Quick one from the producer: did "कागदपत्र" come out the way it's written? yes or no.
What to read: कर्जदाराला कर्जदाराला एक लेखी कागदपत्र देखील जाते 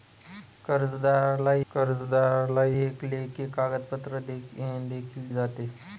yes